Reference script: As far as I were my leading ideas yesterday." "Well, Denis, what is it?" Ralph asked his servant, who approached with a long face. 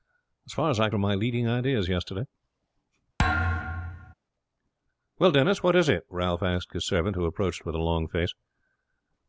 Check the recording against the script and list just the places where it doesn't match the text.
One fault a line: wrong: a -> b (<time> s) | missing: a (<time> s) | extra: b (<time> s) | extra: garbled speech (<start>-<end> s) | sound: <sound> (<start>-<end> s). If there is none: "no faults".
sound: thud (3.2-4.1 s)